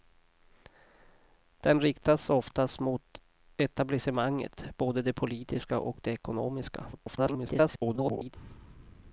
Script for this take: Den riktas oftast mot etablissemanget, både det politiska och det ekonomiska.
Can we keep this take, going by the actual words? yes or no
no